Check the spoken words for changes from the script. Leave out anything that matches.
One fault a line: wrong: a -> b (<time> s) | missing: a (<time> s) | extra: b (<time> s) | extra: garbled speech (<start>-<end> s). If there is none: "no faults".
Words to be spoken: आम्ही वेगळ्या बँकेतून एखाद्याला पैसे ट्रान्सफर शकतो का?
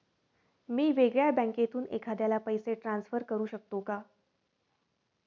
wrong: आम्ही -> मी (0.7 s)
extra: करू (3.2 s)